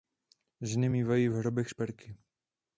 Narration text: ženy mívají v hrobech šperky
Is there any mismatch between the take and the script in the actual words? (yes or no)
no